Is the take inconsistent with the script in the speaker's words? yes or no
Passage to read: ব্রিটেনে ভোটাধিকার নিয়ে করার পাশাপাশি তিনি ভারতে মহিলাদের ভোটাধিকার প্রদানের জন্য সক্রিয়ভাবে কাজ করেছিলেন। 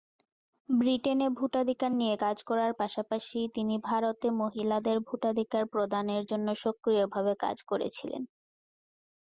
yes